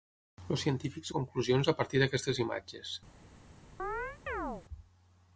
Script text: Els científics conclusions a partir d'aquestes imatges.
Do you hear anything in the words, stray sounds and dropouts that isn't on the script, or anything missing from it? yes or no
yes